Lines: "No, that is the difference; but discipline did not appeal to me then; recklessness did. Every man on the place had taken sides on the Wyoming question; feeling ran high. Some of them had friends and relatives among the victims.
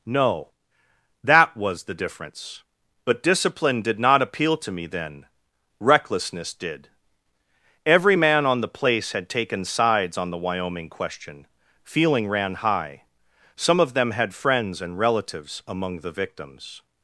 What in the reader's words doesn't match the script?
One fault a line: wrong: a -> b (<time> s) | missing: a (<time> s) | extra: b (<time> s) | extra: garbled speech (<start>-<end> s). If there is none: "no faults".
wrong: is -> was (1.6 s)